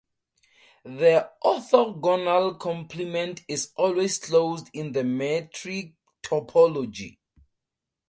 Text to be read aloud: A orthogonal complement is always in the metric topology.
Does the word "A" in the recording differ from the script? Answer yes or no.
yes